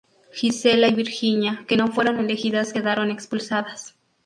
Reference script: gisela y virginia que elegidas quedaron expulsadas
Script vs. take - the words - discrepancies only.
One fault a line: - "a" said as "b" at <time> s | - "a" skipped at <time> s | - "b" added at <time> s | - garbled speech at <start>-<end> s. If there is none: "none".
- "no fueron" added at 1.7 s